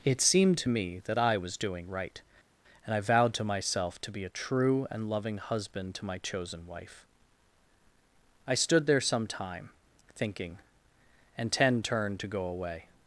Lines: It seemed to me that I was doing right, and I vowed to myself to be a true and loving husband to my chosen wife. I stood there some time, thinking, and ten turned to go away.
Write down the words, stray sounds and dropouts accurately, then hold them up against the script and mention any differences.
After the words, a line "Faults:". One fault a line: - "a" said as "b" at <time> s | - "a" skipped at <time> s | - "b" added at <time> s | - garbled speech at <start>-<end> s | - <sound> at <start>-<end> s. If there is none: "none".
It seemed to me that I was doing right, and I vowed to myself to be a true and loving husband to my chosen wife. I stood there some time, thinking, and ten turned to go away.
Faults:
none